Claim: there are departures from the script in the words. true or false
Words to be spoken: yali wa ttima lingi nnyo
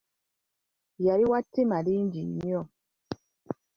false